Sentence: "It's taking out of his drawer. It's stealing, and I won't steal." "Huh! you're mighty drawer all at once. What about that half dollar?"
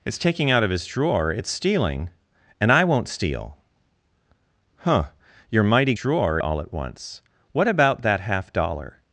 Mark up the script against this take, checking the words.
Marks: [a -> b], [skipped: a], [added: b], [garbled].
"It's taking out of his drawer. It's stealing, and I won't steal." "Huh! you're mighty drawer all at once. What about that half dollar?"